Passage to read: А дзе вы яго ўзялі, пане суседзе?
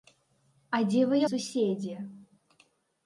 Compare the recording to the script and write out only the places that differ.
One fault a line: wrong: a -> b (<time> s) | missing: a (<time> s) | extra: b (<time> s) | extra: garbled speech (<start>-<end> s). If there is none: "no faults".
missing: яго ўзялі пане (1.2 s)